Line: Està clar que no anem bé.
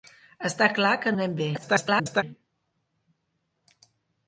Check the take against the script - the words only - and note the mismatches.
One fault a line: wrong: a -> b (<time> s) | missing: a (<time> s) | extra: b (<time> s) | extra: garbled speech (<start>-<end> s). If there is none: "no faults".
missing: no (1.1 s)
extra: garbled speech (1.5-2.2 s)